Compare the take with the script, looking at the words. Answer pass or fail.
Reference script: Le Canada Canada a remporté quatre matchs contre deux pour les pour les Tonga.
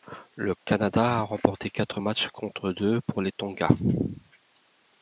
fail